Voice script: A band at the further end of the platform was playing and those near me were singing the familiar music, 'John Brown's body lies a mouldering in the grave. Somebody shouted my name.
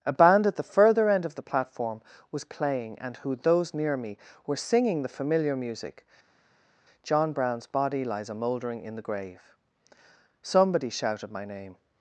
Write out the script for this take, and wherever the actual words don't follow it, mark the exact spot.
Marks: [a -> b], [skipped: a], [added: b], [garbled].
A band at the further end of the platform was playing and [added: who] those near me were singing the familiar music, 'John Brown's body lies a mouldering in the grave. Somebody shouted my name.